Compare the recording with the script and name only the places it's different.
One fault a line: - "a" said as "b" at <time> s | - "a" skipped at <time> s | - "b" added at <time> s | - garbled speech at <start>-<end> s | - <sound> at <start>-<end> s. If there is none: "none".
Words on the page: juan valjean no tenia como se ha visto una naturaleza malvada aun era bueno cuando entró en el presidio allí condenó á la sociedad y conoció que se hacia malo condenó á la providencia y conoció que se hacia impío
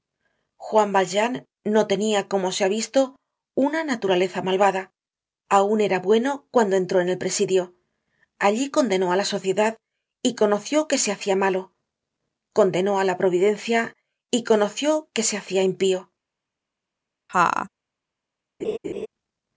- laugh at 17.3-17.7 s
- laugh at 18.6-19.1 s